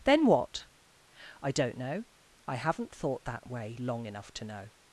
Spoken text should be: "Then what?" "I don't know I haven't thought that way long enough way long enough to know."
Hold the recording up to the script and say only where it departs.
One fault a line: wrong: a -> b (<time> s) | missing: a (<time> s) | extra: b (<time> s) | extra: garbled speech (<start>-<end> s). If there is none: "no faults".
missing: way long enough (4.3 s)